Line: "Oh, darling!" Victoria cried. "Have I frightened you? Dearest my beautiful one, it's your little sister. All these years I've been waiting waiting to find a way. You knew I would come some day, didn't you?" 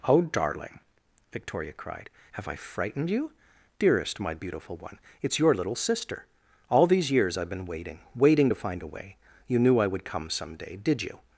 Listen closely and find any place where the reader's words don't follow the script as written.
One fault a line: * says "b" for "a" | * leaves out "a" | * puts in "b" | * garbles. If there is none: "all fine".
* says "did" for "didn't"